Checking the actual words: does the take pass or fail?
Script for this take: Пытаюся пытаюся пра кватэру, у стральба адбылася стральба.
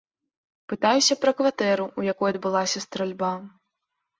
fail